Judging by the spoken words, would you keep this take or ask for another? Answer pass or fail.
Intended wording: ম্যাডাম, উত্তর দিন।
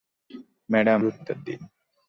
pass